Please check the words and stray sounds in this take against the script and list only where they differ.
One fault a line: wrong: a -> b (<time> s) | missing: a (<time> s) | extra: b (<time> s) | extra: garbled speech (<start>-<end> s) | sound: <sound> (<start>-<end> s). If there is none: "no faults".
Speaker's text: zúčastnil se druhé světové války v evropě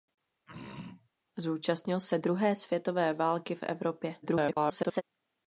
sound: throat clearing (0.5-1.1 s)
extra: garbled speech (4.2-5.0 s)